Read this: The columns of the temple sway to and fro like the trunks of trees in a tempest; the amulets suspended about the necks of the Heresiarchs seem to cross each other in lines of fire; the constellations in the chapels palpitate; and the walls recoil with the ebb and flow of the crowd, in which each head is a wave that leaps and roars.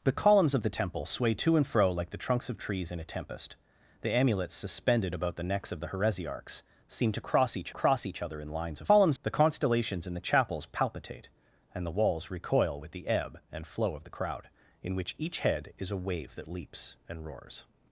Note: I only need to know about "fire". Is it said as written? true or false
false